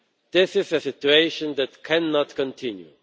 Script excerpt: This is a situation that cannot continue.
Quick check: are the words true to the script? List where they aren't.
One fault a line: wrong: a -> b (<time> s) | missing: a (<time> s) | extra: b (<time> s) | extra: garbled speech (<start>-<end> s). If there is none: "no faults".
no faults